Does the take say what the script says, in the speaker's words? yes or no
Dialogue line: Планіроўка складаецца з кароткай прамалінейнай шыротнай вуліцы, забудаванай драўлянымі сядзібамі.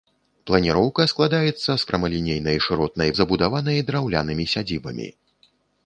no